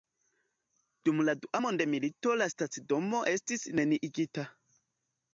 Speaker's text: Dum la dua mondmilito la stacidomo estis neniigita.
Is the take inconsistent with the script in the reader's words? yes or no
no